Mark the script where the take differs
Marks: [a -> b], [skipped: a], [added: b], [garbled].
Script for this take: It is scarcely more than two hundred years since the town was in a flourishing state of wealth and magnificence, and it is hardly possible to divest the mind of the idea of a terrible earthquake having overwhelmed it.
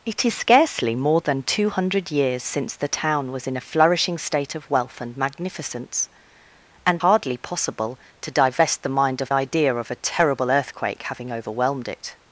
It is scarcely more than two hundred years since the town was in a flourishing state of wealth and magnificence, and [skipped: it is] hardly possible to divest the mind of [skipped: the] idea of a terrible earthquake having overwhelmed it.